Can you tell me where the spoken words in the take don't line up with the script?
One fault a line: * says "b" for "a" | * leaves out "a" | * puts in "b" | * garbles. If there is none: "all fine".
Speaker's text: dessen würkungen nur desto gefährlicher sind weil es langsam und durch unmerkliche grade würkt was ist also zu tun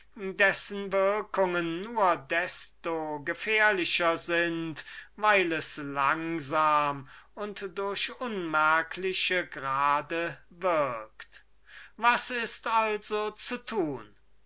all fine